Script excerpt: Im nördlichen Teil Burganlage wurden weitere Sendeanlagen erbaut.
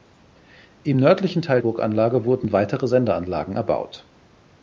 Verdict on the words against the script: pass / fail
pass